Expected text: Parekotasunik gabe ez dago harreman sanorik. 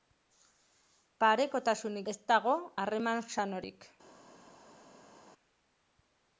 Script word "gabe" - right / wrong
wrong